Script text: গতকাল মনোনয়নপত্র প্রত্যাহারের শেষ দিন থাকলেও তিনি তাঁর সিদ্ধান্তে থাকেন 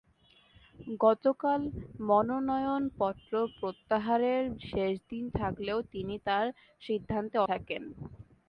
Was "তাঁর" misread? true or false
false